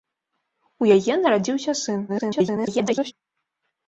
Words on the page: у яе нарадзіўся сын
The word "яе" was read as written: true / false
true